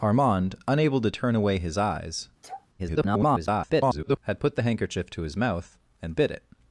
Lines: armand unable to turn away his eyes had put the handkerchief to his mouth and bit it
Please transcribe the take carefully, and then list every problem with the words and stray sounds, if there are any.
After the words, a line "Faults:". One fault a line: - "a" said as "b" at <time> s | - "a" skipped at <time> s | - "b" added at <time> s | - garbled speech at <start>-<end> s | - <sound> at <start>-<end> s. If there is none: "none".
armand unable to turn away his eyes [garbled] had put the handkerchief to his mouth and bit it
Faults:
- sneeze at 2.4-2.7 s
- garbled speech at 2.8-4.2 s